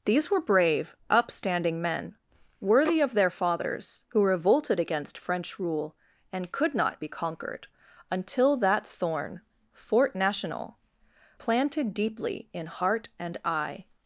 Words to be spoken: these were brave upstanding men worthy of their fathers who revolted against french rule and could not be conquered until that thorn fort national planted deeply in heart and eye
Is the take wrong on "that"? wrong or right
right